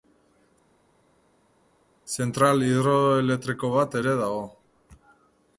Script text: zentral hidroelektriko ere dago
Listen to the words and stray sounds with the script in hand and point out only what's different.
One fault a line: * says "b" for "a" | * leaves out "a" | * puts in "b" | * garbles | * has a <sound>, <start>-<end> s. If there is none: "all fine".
* puts in "bat"